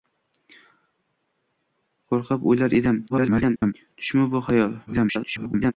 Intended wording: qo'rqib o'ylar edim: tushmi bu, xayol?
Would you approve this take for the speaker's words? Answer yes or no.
no